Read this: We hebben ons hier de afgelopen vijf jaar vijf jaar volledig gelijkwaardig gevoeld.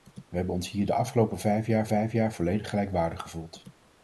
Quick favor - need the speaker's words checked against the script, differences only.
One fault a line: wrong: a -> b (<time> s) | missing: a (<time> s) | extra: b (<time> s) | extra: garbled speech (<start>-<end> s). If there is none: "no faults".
no faults